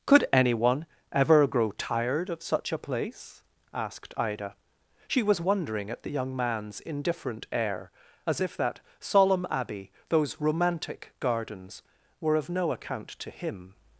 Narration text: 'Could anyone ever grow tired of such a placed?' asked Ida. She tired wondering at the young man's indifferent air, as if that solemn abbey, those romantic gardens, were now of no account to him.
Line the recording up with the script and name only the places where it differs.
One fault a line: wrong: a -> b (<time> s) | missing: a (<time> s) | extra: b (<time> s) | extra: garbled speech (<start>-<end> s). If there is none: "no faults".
wrong: placed -> place (2.8 s)
wrong: tired -> was (5.2 s)
missing: now (12.4 s)